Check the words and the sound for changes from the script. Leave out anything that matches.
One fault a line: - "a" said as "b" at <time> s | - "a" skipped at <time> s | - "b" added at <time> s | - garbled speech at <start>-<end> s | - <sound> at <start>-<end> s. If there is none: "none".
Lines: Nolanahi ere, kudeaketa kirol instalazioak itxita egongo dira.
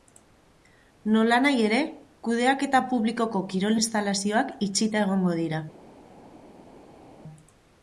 - "publikoko" added at 3.0 s